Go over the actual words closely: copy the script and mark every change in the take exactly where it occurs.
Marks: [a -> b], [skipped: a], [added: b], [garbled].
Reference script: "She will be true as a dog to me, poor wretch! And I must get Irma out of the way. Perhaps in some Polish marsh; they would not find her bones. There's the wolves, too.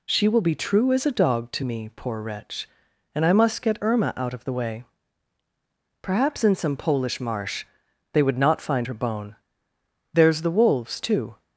"She will be true as a dog to me, poor wretch! And I must get Irma out of the way. Perhaps in some Polish marsh; they would not find her [bones. -> bone] There's the wolves, too.